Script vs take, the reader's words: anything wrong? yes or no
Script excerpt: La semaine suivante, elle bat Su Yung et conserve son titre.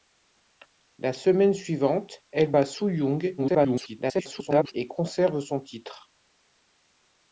yes